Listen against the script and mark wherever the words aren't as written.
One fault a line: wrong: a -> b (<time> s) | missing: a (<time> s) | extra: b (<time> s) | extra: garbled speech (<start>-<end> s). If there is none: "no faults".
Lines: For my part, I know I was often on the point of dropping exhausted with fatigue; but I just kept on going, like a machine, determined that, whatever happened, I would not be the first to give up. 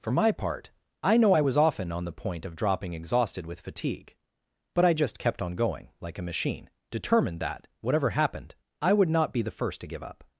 no faults